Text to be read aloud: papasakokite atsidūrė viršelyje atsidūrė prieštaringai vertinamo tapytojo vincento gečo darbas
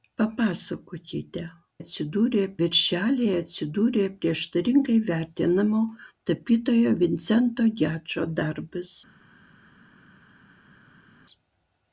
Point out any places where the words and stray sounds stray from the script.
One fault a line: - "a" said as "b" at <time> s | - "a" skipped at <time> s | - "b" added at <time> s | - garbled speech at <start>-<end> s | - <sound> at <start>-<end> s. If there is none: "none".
none